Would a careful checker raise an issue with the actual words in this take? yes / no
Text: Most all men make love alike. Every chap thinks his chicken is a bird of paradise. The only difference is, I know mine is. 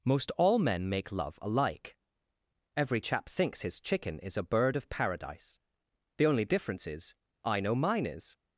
no